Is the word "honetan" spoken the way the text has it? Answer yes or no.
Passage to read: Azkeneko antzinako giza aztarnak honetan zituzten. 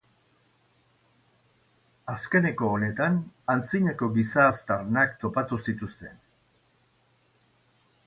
no